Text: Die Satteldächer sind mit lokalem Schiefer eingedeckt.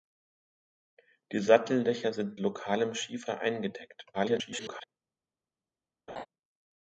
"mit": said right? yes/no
no